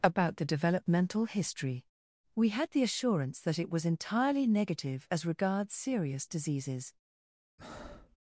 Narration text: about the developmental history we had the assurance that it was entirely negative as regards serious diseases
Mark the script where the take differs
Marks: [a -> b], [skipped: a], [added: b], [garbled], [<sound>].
about the developmental history we had the assurance that it was entirely negative as regards serious diseases [breath]